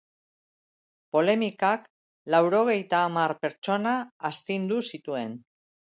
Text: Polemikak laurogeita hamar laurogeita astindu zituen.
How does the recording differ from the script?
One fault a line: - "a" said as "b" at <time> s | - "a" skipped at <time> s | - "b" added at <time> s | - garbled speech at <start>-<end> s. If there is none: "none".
- "laurogeita" said as "pertsona" at 3.4 s